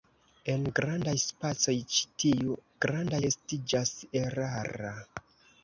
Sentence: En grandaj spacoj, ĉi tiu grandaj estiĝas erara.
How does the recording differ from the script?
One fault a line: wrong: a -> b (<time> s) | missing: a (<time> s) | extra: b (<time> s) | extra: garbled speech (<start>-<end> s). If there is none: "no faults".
no faults